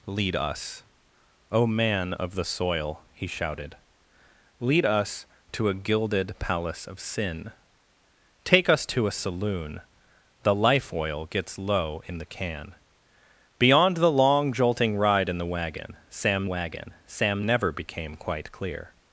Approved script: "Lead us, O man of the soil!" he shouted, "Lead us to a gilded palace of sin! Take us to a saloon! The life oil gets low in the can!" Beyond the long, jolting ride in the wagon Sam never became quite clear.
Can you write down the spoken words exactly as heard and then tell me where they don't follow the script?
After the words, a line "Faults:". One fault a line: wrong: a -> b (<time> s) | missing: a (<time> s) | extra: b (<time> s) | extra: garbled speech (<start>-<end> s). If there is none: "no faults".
"Lead us, O man of the soil!" he shouted, "Lead us to a gilded palace of sin! Take us to a saloon! The life oil gets low in the can!" Beyond the long, jolting ride in the wagon Sam wagon Sam never became quite clear.
Faults:
extra: wagon Sam (16.4 s)